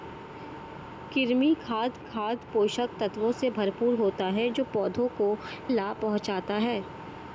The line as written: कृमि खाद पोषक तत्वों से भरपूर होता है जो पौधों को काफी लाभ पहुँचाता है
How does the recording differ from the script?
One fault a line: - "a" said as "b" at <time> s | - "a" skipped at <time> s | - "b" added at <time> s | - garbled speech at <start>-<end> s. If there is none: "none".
- "खाद" added at 2.0 s
- "काफी" skipped at 5.3 s